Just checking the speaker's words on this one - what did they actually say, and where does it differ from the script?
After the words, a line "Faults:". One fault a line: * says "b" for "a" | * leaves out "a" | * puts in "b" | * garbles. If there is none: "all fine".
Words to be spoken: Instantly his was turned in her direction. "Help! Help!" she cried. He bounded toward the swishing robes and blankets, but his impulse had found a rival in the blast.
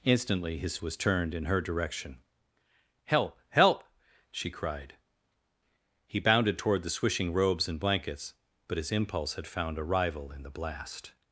Instantly his was turned in her direction. "Help! Help!" she cried. He bounded toward the swishing robes and blankets, but his impulse had found a rival in the blast.
Faults:
all fine